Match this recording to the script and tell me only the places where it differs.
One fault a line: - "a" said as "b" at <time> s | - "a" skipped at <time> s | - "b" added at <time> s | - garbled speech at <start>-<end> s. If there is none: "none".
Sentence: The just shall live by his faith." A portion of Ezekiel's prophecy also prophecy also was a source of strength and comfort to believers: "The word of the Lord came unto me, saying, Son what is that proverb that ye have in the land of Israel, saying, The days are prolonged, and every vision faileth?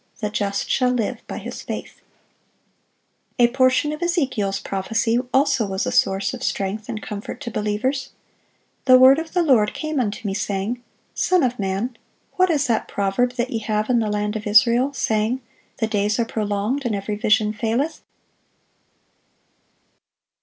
- "prophecy also" skipped at 5.7 s
- "of man" added at 11.4 s